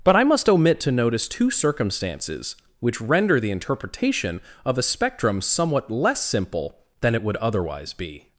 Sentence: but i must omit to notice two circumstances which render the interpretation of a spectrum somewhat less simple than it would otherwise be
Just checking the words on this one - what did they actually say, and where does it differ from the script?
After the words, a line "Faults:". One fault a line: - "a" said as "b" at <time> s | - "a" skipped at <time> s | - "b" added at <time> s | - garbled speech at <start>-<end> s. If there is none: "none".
but i must omit to notice two circumstances which render the interpretation of a spectrum somewhat less simple than it would otherwise be
Faults:
none